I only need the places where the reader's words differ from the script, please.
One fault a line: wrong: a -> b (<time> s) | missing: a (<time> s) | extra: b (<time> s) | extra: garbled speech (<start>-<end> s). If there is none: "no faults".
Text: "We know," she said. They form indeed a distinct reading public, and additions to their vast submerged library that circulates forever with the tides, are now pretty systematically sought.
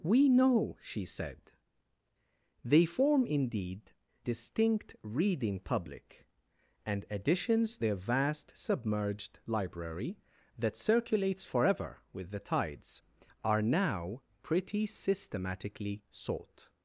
missing: a (3.9 s)
missing: to (7.8 s)